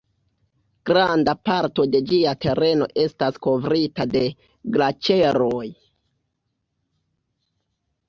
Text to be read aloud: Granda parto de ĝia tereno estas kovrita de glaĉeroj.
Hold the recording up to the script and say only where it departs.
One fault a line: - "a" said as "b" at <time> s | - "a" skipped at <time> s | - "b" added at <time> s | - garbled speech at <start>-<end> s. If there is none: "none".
none